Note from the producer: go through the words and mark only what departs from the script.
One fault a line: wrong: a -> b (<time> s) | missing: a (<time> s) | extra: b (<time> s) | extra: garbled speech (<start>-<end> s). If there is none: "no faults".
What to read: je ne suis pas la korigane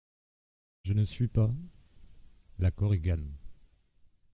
no faults